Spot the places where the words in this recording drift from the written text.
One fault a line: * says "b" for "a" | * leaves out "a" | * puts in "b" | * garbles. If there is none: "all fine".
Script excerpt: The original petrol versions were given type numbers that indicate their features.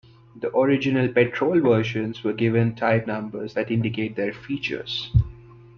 all fine